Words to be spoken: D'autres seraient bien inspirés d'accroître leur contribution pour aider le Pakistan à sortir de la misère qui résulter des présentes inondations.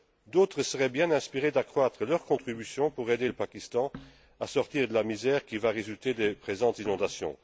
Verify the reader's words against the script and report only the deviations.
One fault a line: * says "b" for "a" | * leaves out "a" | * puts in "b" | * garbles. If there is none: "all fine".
* puts in "va"